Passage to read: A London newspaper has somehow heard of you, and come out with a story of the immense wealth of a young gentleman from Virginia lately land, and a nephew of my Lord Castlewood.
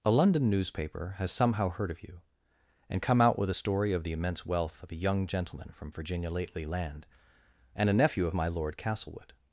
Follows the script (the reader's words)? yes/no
yes